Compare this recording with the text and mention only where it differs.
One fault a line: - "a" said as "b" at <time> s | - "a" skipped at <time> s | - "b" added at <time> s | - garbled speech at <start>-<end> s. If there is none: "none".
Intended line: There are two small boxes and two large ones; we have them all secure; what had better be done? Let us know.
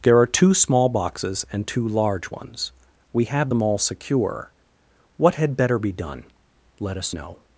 none